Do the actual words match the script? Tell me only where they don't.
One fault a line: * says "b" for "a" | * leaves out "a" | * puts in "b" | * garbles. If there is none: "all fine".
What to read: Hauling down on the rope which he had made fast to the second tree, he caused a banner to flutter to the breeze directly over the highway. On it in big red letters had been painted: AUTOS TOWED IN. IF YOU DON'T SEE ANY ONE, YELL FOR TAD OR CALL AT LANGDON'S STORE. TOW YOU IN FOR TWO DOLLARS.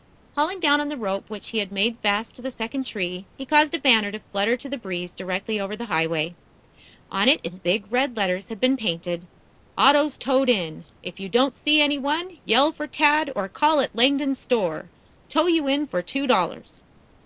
all fine